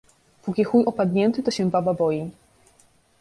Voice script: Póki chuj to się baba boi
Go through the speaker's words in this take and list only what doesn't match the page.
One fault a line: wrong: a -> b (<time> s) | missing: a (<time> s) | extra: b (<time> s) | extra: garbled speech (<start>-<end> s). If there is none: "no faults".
extra: opadnięty (0.8 s)